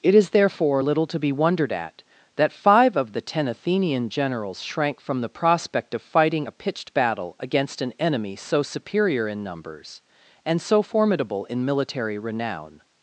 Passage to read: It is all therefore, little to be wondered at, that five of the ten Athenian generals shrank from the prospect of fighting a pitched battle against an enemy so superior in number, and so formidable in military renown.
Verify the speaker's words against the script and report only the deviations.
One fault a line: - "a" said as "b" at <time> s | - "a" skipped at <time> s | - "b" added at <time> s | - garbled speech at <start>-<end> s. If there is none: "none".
- "all" skipped at 0.3 s
- "number" said as "numbers" at 9.4 s